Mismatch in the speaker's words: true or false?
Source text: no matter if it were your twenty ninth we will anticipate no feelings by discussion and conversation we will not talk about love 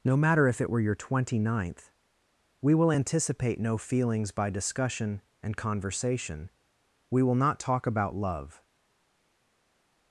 false